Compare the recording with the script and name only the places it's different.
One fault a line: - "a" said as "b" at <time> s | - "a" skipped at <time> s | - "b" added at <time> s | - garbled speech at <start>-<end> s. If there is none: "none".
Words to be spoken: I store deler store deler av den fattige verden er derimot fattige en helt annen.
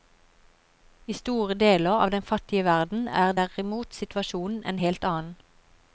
- "store deler" skipped at 1.9 s
- "fattige" said as "situasjonen" at 4.0 s